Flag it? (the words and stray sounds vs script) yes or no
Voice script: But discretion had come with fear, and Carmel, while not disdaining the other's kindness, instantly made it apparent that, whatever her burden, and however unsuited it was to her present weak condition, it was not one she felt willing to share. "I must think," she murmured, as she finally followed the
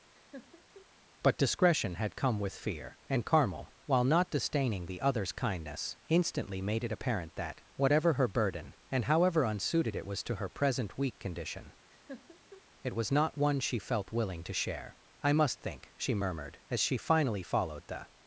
yes